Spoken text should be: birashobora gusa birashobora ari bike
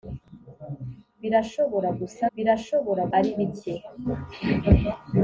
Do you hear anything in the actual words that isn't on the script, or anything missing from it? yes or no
no